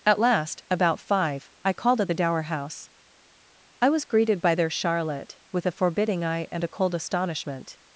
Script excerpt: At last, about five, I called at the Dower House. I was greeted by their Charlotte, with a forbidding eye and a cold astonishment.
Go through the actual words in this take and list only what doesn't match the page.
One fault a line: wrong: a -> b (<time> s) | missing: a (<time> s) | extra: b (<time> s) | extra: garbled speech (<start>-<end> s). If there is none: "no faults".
no faults